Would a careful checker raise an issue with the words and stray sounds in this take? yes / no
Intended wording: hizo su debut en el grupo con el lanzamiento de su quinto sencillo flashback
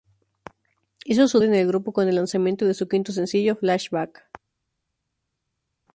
yes